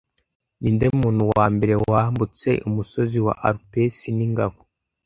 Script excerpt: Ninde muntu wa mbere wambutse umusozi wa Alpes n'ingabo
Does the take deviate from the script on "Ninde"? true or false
false